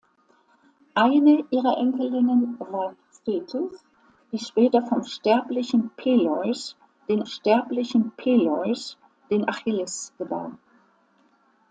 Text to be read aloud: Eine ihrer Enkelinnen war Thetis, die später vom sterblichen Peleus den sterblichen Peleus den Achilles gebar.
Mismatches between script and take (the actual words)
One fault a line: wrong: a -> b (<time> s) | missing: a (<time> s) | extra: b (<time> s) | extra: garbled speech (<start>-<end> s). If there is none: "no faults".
no faults